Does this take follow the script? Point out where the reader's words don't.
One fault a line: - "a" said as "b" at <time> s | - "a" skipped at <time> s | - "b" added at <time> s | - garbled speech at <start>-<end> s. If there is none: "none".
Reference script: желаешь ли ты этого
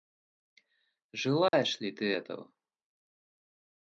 none